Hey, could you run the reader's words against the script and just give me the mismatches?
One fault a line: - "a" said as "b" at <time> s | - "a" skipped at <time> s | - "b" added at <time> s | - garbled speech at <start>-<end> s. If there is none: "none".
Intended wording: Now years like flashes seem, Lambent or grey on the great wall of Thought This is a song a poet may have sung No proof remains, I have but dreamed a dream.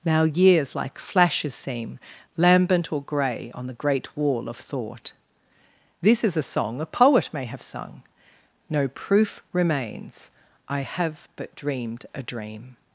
none